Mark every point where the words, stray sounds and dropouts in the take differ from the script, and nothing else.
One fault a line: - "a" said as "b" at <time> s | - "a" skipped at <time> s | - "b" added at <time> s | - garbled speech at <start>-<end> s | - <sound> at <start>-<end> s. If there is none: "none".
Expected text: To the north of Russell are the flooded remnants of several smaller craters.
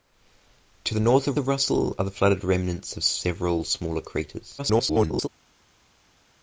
- "of" added at 1.4 s
- garbled speech at 4.6-5.3 s